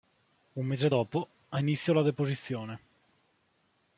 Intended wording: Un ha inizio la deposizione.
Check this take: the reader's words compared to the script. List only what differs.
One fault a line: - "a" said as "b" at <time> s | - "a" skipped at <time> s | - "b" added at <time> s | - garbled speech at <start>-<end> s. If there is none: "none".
- "mese dopo" added at 0.7 s